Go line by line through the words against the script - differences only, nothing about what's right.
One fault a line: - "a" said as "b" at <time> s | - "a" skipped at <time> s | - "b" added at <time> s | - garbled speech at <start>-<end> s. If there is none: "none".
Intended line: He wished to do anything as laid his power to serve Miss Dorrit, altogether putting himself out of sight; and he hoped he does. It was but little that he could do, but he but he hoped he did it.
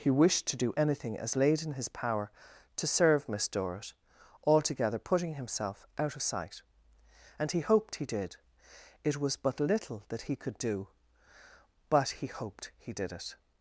- "in" added at 1.6 s
- "does" said as "did" at 8.0 s
- "but he" skipped at 12.3 s